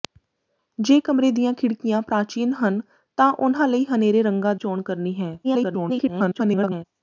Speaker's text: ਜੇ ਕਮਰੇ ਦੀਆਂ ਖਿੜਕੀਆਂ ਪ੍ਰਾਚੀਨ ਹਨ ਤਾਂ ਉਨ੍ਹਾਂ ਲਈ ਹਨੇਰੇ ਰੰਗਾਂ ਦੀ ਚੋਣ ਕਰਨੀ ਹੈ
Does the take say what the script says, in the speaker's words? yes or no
no